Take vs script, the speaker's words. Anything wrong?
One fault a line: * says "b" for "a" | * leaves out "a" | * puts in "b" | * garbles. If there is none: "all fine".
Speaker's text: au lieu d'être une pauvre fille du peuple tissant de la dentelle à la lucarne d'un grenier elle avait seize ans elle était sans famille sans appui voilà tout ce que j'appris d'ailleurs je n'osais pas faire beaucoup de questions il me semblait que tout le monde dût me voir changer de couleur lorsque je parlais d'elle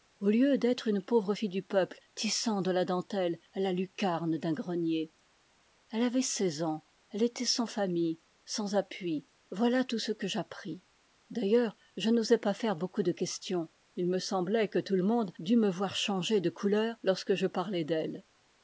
all fine